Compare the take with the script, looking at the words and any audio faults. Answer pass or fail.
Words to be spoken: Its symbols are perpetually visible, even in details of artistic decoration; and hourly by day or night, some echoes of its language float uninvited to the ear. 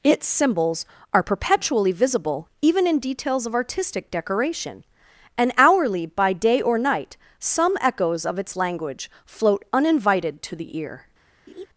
fail